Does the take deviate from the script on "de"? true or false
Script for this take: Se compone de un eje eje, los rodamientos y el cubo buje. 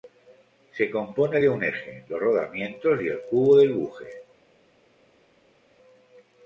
false